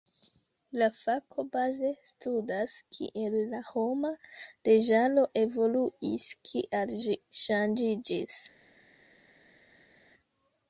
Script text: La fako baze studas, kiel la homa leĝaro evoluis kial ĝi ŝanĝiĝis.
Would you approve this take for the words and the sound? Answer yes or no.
yes